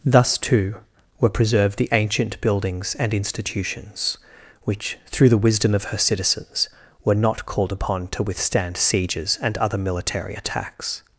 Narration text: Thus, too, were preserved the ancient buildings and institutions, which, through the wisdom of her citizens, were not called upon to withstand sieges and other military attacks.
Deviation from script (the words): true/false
false